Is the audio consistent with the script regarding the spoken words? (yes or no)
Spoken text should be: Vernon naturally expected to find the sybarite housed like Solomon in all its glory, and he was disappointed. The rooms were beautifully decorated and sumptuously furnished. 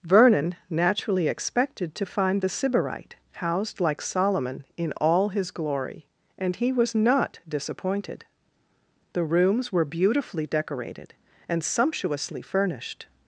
no